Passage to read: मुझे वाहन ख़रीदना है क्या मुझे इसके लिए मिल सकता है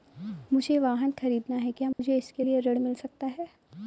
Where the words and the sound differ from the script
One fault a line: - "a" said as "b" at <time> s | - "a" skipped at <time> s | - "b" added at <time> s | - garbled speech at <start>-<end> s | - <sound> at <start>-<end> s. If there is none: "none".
- dropout at 1.9-2.0 s
- "ऋण" added at 2.6 s